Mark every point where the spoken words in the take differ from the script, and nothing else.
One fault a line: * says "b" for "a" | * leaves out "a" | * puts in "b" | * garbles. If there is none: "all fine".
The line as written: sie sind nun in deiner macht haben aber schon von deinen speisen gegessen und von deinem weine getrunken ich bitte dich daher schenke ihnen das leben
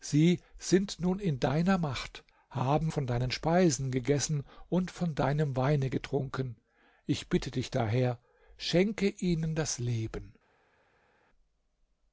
* leaves out "aber schon"